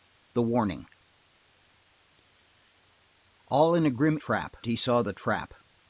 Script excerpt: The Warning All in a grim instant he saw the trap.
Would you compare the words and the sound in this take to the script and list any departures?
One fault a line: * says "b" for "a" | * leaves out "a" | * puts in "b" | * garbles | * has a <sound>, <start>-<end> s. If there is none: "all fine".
* says "trap" for "instant"